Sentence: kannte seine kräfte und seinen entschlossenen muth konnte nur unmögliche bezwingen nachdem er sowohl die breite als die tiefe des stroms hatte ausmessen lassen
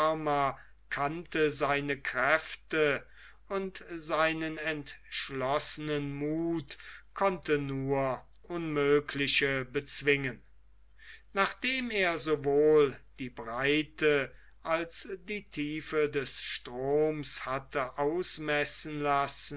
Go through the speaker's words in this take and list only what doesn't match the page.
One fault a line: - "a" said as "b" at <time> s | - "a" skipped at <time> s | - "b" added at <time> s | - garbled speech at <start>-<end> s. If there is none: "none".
none